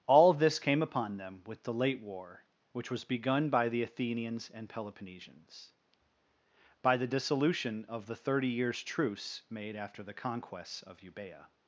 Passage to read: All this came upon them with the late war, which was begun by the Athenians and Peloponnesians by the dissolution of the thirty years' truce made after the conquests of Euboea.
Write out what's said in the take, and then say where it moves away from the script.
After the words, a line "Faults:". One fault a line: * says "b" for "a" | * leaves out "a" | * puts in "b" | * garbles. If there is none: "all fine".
All this came upon them with the late war, which was begun by the Athenians and Peloponnesians by the dissolution of the thirty years' truce made after the conquests of Euboea.
Faults:
all fine